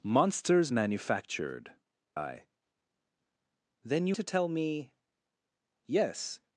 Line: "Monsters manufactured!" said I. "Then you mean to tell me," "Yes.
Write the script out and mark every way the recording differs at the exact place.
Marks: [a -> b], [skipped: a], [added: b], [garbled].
"Monsters manufactured!" [skipped: said] I. "Then you [skipped: mean] to tell me," "Yes.